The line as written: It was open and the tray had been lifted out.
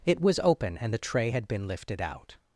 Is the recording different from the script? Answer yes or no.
no